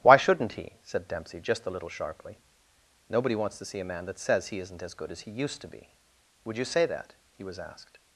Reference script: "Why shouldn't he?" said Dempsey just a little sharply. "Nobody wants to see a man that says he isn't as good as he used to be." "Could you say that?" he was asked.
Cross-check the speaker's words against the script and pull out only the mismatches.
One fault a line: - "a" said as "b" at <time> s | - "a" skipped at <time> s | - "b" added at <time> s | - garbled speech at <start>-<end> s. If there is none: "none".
- "Could" said as "Would" at 6.4 s